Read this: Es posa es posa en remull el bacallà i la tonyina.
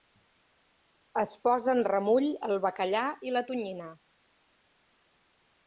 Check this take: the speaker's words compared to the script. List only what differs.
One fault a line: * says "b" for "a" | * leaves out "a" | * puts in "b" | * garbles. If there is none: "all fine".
* leaves out "es posa"